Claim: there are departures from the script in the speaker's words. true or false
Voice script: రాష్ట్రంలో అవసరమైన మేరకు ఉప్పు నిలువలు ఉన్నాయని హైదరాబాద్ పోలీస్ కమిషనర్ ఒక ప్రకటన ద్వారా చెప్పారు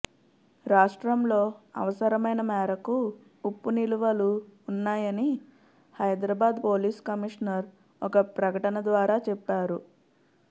false